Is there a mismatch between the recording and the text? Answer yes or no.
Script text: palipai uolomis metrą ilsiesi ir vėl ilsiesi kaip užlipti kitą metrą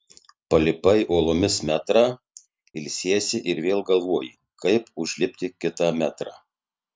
yes